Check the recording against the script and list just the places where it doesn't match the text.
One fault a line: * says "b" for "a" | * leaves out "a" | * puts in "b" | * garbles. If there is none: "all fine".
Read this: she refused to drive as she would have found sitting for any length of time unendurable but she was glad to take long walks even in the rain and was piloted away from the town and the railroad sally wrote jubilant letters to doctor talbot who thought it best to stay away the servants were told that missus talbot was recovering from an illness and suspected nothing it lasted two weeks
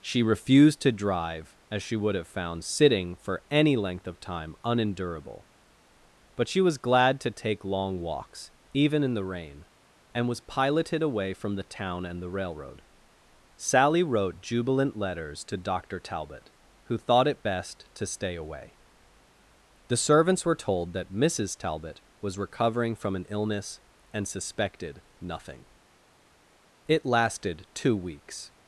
all fine